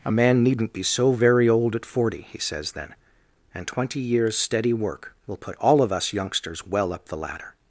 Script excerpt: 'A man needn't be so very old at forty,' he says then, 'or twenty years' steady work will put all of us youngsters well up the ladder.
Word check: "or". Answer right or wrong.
wrong